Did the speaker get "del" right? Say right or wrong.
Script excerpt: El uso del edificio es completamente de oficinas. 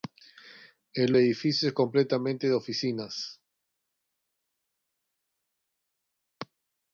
wrong